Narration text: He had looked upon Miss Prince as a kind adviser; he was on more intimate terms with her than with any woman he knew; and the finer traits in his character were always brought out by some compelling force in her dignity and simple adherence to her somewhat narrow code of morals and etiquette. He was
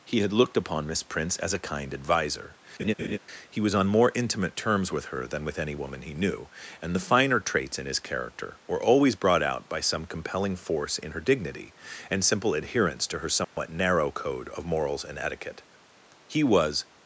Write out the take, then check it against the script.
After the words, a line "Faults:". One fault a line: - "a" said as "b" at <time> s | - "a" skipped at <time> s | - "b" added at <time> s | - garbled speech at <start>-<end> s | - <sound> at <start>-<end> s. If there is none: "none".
He had looked upon Miss Prince as a kind adviser; he was on more intimate terms with her than with any woman he knew; and the finer traits in his character were always brought out by some compelling force in her dignity and simple adherence to her somewhat narrow code of morals and etiquette. He was
Faults:
- laugh at 2.8-3.2 s
- dropout at 13.4-13.6 s